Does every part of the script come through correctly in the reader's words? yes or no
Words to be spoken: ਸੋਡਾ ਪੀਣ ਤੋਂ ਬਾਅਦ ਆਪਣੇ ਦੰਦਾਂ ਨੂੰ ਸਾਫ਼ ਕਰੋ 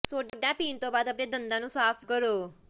yes